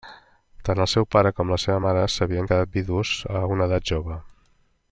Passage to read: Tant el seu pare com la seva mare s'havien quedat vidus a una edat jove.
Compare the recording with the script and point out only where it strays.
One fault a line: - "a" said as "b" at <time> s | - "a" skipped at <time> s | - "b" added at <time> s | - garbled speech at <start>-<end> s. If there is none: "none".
none